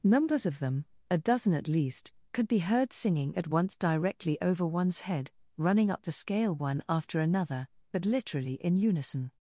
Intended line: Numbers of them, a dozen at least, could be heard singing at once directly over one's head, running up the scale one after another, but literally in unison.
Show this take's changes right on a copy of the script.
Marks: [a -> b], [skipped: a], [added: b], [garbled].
Numbers of them, a dozen at least, could be heard singing at once directly over one's head, running up the scale one after another, but literally in unison.